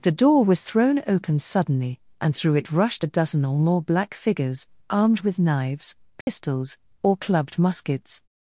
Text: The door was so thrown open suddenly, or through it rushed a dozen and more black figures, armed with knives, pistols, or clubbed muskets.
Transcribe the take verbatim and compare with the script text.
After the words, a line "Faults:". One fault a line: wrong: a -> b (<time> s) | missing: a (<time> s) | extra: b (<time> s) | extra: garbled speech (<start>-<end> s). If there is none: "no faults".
The door was thrown open suddenly, and through it rushed a dozen or more black figures, armed with knives, pistols, or clubbed muskets.
Faults:
missing: so (0.6 s)
wrong: or -> and (2.2 s)
wrong: and -> or (3.4 s)